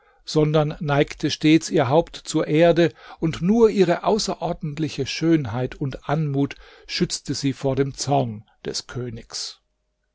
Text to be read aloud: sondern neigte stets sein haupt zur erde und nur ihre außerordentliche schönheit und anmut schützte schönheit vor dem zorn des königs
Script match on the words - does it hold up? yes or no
no